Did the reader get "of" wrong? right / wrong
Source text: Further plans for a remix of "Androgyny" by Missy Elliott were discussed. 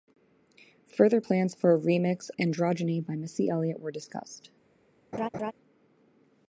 wrong